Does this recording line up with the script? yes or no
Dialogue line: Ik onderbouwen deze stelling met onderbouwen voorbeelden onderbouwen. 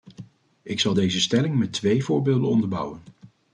no